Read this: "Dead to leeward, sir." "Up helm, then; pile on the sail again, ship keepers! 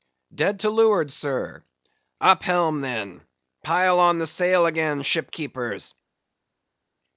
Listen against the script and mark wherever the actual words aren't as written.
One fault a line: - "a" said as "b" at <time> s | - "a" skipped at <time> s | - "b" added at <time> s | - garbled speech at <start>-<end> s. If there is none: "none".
none